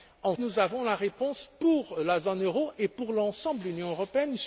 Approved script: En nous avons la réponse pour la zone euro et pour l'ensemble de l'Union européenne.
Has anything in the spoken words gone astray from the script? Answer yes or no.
no